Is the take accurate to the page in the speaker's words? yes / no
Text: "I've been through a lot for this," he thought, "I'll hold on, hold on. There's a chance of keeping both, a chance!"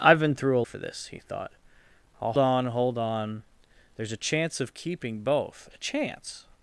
no